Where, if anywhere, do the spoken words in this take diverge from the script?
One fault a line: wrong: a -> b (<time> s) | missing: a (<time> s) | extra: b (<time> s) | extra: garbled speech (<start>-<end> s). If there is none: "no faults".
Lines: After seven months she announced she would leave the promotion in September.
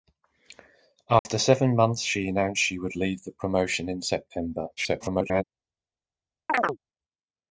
extra: garbled speech (4.8-5.4 s)